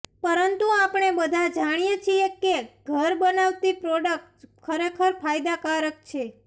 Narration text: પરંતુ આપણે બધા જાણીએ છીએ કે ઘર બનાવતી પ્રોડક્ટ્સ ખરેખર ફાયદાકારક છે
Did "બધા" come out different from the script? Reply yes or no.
no